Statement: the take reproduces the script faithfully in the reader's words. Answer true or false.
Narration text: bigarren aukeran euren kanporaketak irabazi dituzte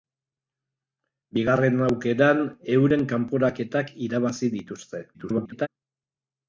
false